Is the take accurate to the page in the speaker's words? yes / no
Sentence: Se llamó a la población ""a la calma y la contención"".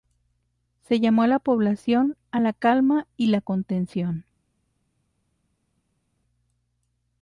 yes